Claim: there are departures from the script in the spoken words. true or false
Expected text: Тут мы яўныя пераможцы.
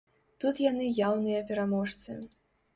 true